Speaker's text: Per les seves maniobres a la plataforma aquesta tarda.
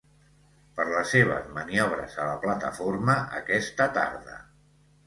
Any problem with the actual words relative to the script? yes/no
no